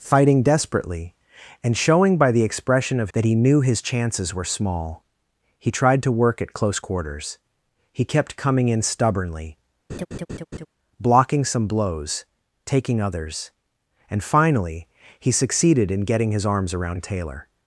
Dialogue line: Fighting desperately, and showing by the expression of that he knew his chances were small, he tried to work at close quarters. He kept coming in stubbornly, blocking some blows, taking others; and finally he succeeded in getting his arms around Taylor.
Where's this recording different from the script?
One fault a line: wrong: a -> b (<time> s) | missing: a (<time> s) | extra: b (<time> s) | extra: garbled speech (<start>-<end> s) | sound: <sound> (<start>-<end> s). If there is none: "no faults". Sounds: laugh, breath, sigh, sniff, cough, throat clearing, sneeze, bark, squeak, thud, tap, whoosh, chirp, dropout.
sound: laugh (9.9-10.7 s)